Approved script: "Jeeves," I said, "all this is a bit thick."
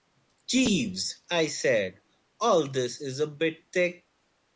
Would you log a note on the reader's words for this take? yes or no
no